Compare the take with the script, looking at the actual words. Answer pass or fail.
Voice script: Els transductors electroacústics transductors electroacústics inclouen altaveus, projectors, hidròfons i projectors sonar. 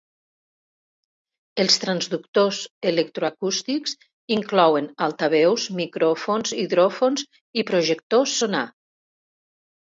fail